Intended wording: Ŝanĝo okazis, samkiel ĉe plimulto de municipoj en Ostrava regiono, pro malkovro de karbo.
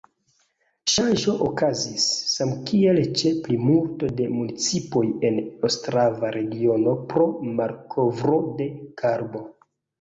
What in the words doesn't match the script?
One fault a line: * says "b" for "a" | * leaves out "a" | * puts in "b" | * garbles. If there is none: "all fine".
all fine